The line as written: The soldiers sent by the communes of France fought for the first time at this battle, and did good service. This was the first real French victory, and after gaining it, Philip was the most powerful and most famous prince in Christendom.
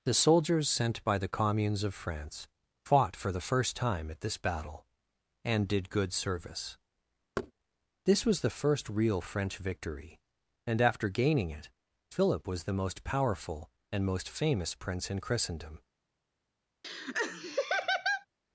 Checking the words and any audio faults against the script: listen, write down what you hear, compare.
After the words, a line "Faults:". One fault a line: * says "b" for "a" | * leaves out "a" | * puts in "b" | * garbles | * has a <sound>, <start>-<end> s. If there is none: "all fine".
The soldiers sent by the communes of France fought for the first time at this battle, and did good service. This was the first real French victory, and after gaining it, Philip was the most powerful and most famous prince in Christendom.
Faults:
* has a thud, 7.4-7.5 s
* has a laugh, 16.8-18.3 s